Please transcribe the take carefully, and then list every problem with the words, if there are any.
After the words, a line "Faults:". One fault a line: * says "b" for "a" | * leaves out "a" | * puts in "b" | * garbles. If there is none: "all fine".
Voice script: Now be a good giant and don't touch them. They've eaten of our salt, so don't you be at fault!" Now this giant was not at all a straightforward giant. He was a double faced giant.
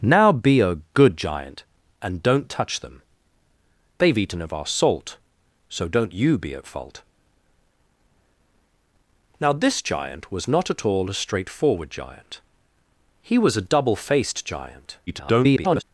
Now be a good giant and don't touch them. They've eaten of our salt, so don't you be at fault!" Now this giant was not at all a straightforward giant. He was a double faced giant. [garbled]
Faults:
* garbles